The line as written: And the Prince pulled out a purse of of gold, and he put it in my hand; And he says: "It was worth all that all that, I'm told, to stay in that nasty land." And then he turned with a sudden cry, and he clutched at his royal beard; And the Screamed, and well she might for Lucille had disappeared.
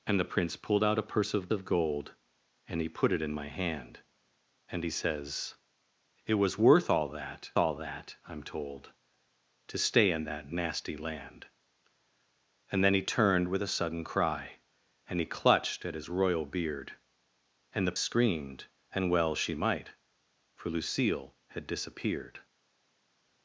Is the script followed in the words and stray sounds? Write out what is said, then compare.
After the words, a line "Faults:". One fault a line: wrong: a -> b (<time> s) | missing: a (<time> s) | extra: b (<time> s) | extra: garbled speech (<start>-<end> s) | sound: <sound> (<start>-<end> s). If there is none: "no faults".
And the Prince pulled out a purse of of gold, and he put it in my hand; And he says: "It was worth all that all that, I'm told, to stay in that nasty land." And then he turned with a sudden cry, and he clutched at his royal beard; And the Screamed, and well she might for Lucille had disappeared.
Faults:
no faults